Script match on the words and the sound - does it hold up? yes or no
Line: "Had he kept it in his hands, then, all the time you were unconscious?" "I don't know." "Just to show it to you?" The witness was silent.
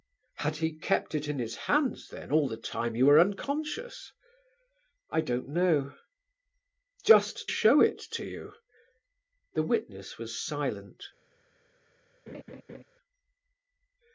no